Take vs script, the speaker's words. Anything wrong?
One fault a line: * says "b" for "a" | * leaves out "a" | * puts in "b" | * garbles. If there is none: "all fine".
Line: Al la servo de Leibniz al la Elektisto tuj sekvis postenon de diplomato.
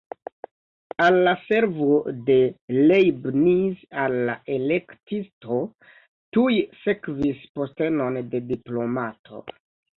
all fine